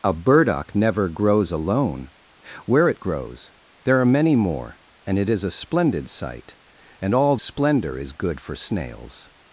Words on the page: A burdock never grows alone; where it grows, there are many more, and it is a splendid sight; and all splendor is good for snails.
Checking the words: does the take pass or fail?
pass